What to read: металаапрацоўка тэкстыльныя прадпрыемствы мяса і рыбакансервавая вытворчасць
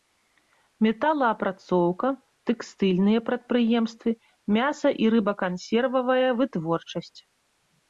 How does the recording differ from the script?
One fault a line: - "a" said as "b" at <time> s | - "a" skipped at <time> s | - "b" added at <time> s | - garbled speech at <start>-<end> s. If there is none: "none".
none